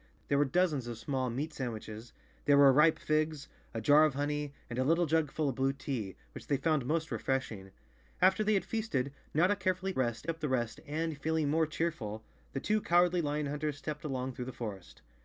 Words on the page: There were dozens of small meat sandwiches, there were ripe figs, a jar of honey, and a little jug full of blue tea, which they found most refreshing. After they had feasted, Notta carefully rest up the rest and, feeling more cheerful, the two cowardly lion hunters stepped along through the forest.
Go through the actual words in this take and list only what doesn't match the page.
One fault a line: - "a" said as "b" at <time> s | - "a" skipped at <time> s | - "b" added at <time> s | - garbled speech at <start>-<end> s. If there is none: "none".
none